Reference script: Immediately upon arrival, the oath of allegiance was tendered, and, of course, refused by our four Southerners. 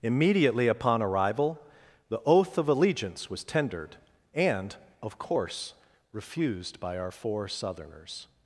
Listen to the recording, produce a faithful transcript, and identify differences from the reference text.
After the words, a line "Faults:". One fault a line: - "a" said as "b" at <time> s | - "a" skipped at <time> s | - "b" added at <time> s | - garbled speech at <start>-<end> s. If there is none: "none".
Immediately upon arrival, the oath of allegiance was tendered, and, of course, refused by our four Southerners.
Faults:
none